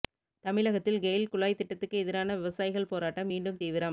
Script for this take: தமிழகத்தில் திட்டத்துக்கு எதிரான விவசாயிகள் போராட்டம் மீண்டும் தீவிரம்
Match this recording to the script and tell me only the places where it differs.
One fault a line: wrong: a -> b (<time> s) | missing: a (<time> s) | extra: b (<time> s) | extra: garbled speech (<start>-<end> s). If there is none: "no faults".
extra: கெயில் குழாய் (1.0 s)